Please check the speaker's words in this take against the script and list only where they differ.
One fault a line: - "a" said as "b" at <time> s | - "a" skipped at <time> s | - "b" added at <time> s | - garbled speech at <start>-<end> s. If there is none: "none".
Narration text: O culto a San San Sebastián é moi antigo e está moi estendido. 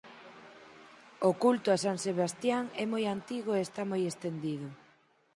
- "San" skipped at 2.0 s